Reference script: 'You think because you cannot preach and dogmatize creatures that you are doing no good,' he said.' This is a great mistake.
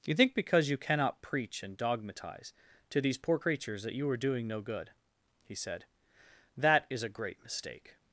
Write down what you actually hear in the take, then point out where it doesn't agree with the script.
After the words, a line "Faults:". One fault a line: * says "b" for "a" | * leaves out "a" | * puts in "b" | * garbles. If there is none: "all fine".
'You think because you cannot preach and dogmatize to these poor creatures that you are doing no good,' he said.' That is a great mistake.
Faults:
* puts in "to these poor"
* says "That" for "This"